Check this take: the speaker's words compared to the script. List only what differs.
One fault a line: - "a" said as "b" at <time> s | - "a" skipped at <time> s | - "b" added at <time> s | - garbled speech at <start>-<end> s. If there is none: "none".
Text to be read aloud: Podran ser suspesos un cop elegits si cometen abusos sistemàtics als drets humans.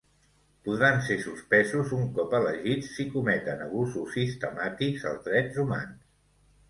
none